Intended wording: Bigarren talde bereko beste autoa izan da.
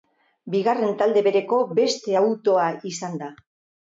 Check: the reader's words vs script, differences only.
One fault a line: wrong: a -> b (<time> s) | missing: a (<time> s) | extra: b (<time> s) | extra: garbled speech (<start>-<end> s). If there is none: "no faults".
no faults